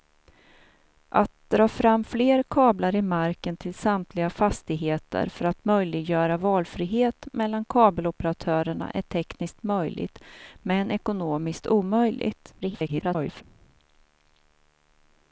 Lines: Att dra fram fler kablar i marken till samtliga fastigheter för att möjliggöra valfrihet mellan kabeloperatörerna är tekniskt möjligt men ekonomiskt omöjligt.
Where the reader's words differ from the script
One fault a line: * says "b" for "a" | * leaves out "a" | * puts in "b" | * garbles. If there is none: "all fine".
* garbles